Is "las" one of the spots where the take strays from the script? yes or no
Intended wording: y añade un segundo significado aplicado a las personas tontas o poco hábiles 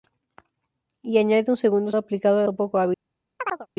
yes